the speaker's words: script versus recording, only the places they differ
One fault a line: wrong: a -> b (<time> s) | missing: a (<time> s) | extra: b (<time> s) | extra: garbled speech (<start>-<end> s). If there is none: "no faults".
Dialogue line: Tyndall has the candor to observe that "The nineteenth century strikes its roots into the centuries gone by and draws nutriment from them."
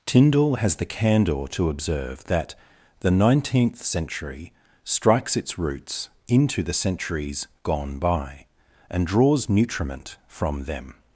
no faults